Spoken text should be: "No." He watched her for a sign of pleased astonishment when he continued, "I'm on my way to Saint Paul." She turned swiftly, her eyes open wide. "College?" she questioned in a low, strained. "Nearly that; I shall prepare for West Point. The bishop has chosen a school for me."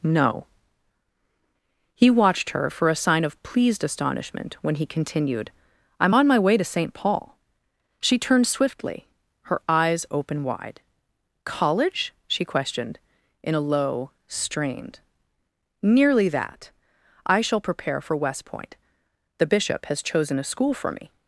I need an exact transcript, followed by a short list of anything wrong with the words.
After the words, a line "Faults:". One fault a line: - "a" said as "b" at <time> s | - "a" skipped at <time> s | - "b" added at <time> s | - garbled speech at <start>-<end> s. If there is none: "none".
"No." He watched her for a sign of pleased astonishment when he continued, "I'm on my way to Saint Paul." She turned swiftly, her eyes open wide. "College?" she questioned in a low, strained. "Nearly that; I shall prepare for West Point. The bishop has chosen a school for me."
Faults:
none